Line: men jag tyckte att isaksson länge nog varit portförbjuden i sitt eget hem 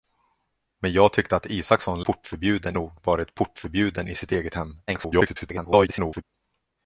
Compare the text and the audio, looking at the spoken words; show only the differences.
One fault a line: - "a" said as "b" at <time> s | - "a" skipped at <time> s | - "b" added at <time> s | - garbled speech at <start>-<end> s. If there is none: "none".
- "länge" said as "portförbjuden" at 2.0 s
- garbled speech at 4.9-6.2 s